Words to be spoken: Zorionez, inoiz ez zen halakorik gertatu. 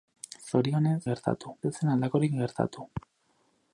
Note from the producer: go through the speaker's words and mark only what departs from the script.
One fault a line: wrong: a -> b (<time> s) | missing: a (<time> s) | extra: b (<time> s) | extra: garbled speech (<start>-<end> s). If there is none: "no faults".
wrong: inoiz -> gertatu (1.1 s)